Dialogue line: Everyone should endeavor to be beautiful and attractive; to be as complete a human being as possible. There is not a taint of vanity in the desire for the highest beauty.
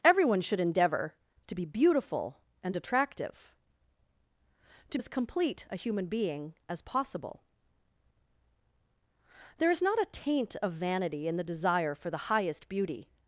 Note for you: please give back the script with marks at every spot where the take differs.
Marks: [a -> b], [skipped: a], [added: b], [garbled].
Everyone should endeavor to be beautiful and attractive; to [skipped: be] as complete a human being as possible. There is not a taint of vanity in the desire for the highest beauty.